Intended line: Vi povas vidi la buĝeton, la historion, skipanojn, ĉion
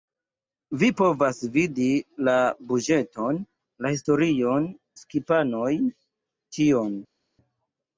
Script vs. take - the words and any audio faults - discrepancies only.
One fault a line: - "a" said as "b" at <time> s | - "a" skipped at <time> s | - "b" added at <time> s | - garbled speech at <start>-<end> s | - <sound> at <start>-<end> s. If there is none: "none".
none